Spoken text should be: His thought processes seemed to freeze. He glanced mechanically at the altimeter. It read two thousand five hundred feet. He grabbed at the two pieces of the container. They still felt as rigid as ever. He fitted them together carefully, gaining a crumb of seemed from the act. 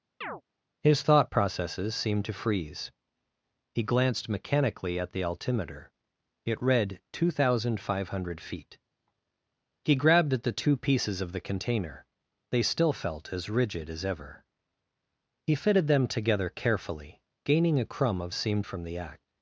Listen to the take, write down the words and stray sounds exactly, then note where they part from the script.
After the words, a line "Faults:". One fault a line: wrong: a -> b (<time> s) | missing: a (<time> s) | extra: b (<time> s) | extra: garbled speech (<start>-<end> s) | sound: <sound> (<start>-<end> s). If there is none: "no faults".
His thought processes seemed to freeze. He glanced mechanically at the altimeter. It read two thousand five hundred feet. He grabbed at the two pieces of the container. They still felt as rigid as ever. He fitted them together carefully, gaining a crumb of seemed from the act.
Faults:
sound: chirp (0.2-0.4 s)